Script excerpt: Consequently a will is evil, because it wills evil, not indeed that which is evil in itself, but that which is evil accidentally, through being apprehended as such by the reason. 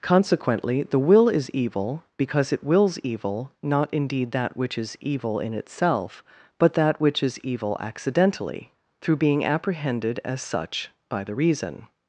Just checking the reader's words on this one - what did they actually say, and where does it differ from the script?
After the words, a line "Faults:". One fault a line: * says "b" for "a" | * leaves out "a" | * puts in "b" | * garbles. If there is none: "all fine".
Consequently the will is evil, because it wills evil, not indeed that which is evil in itself, but that which is evil accidentally, through being apprehended as such by the reason.
Faults:
* says "the" for "a"